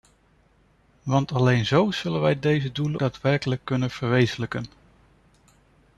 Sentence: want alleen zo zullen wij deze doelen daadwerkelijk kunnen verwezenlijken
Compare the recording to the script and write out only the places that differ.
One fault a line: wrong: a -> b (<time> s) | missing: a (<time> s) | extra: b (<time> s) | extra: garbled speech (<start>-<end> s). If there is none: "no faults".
no faults